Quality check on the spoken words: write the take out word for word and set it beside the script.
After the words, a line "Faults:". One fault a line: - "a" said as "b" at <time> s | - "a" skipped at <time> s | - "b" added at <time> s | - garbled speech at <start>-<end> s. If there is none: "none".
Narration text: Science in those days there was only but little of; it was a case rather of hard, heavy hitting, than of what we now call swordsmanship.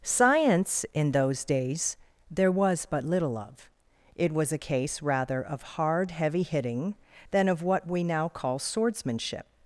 Science in those days there was but little of; it was a case rather of hard, heavy hitting, than of what we now call swordsmanship.
Faults:
- "only" skipped at 2.9 s